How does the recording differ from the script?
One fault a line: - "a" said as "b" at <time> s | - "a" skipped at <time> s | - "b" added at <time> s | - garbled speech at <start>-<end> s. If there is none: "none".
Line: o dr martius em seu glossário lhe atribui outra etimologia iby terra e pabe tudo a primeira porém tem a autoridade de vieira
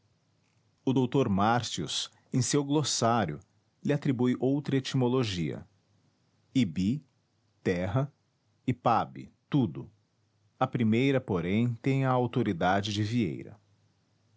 none